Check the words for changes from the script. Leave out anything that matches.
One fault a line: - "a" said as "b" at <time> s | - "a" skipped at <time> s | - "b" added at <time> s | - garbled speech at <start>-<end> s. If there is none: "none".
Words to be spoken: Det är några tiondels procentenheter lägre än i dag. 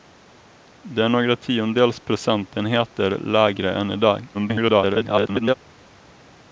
- garbled speech at 4.3-5.5 s